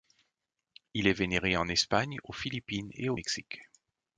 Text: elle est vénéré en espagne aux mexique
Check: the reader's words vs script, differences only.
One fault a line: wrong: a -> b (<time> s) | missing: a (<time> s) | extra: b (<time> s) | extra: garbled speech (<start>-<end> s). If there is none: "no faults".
wrong: elle -> il (0.9 s)
extra: philippines et au (2.3 s)